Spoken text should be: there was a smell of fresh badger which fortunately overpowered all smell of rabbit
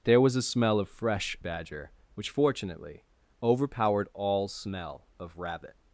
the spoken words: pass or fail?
pass